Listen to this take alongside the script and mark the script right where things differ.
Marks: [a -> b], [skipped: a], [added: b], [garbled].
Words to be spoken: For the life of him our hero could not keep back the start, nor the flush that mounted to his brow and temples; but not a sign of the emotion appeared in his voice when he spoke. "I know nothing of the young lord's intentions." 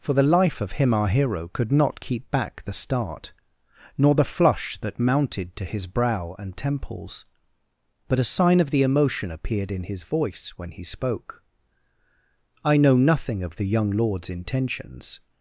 For the life of him our hero could not keep back the start, nor the flush that mounted to his brow and temples; but [skipped: not] a sign of the emotion appeared in his voice when he spoke. "I know nothing of the young lord's intentions."